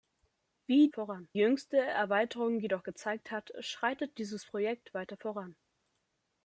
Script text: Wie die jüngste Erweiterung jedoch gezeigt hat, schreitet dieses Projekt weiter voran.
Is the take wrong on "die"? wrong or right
wrong